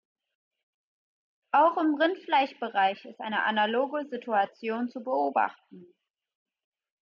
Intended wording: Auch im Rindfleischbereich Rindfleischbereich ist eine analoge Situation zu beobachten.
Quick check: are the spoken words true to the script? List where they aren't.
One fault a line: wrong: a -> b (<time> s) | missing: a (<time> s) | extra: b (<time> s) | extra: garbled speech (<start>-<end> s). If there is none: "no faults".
missing: Rindfleischbereich (3.1 s)